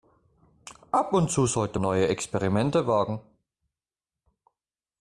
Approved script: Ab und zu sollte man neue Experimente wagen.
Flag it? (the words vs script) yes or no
yes